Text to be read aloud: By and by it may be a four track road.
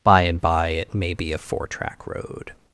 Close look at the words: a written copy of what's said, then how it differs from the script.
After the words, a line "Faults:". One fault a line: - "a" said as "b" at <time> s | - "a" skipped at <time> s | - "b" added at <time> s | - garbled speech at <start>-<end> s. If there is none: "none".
By and by it may be a four track road.
Faults:
none